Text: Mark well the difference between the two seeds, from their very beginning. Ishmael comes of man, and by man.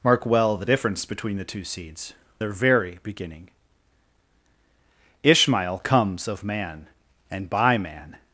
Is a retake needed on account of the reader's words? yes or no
yes